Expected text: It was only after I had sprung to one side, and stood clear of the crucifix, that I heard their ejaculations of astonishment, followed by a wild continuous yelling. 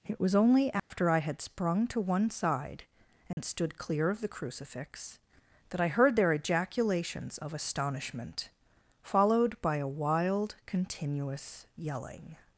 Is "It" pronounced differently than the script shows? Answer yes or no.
no